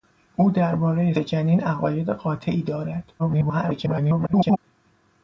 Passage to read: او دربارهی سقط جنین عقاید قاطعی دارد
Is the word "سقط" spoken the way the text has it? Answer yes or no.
no